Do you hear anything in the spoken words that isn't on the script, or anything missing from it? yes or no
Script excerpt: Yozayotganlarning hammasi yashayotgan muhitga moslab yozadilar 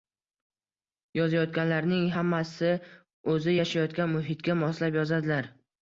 yes